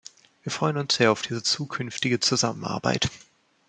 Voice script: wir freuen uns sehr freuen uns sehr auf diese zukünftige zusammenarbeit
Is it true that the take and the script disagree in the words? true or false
true